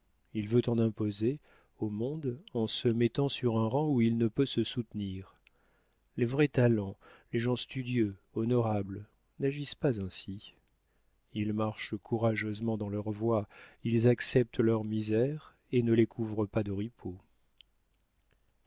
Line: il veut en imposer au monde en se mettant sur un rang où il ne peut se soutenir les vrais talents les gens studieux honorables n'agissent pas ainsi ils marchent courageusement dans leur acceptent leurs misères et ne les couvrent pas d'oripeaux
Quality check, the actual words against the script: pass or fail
fail